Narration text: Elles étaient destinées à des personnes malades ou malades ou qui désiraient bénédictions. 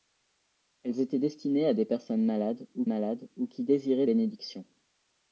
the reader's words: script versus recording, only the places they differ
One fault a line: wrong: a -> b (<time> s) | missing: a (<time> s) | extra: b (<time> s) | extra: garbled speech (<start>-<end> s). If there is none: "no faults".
no faults